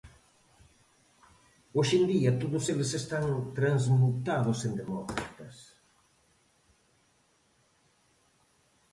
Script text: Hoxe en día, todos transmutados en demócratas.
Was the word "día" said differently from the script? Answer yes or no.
no